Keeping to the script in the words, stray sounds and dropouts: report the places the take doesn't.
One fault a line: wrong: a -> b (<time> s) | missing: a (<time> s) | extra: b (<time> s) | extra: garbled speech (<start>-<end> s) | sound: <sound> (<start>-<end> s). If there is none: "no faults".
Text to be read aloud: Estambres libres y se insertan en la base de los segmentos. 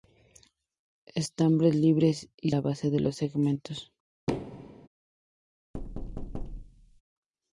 missing: se insertan en (2.5 s)
sound: thud (4.3-4.9 s)
sound: thud (5.7-7.0 s)